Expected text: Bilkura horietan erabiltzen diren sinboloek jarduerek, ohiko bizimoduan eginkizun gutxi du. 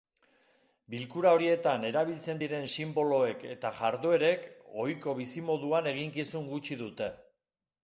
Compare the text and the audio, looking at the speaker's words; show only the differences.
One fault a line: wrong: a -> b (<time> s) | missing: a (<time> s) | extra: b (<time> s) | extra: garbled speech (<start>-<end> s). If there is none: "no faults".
extra: eta (3.5 s)
wrong: du -> dute (6.8 s)